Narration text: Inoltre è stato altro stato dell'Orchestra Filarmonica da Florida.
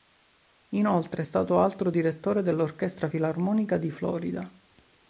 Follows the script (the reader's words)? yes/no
no